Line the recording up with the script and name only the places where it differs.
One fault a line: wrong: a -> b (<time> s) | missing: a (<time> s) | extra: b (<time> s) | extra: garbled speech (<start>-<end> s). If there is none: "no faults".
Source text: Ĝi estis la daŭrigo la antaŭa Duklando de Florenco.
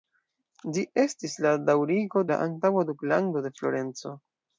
no faults